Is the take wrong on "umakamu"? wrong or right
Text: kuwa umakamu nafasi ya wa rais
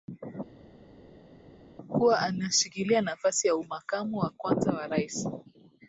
wrong